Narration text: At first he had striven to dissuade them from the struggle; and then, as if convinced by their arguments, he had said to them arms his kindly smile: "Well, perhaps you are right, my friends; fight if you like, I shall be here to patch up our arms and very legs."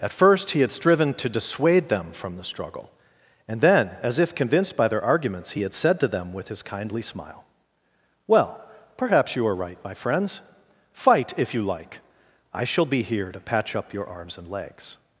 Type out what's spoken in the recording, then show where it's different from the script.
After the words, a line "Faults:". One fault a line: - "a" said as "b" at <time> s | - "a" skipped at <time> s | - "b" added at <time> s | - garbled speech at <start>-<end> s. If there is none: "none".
At first he had striven to dissuade them from the struggle; and then, as if convinced by their arguments, he had said to them with his kindly smile: "Well, perhaps you are right, my friends; fight if you like, I shall be here to patch up your arms and legs."
Faults:
- "arms" said as "with" at 6.3 s
- "our" said as "your" at 13.9 s
- "very" skipped at 14.5 s